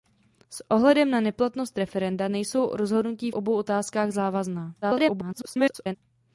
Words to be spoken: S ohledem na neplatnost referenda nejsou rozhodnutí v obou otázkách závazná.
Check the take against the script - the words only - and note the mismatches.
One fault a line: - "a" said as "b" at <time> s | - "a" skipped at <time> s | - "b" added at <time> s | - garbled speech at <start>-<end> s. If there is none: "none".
- "v" skipped at 3.3 s
- garbled speech at 4.8-6.0 s